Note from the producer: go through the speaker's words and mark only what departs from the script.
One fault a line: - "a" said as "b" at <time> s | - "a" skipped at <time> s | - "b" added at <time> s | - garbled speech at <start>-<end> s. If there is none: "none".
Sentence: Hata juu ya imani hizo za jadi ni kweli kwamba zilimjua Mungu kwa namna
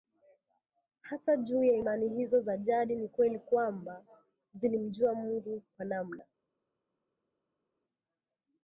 none